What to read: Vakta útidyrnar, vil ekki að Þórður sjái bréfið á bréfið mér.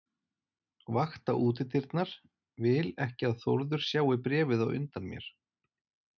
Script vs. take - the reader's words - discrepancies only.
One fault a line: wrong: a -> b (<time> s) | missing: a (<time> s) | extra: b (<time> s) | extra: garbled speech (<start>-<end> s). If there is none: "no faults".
wrong: bréfið -> undan (4.8 s)